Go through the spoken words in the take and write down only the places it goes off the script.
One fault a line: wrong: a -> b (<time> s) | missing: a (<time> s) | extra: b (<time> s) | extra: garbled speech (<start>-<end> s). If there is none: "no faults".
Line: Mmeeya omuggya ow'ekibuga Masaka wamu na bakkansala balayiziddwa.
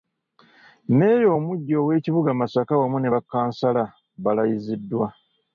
wrong: na -> ne (3.0 s)